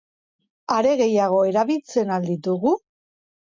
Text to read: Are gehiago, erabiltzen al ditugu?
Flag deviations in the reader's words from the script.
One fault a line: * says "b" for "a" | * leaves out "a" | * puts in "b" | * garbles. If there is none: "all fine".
all fine